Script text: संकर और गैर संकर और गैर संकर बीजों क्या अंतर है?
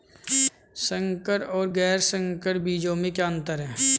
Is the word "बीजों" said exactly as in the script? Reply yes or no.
no